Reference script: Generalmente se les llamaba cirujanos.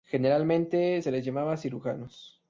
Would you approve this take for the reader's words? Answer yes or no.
yes